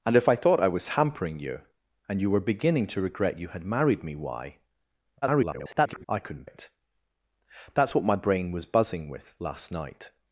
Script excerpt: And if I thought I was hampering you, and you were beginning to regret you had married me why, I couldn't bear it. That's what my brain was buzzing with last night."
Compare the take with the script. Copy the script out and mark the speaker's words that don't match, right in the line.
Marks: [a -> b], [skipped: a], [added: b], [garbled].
And if I thought I was hampering you, and you were beginning to regret you had married me why, [garbled] I couldn't [skipped: bear] it. That's what my brain was buzzing with last night."